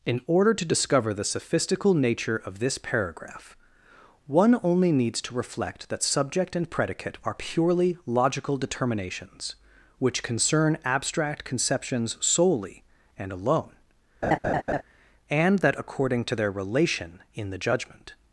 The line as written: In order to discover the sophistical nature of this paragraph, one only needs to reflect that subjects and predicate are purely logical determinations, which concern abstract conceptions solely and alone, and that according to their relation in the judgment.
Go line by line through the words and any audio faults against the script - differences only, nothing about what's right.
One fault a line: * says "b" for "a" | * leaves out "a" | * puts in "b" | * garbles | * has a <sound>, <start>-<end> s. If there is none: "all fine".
* says "subject" for "subjects"
* has a laugh, 14.2-14.8 s